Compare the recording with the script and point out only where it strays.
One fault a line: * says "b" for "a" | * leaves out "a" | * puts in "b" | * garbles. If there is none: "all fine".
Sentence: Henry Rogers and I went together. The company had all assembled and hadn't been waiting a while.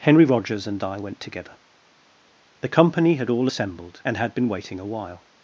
* says "had" for "hadn't"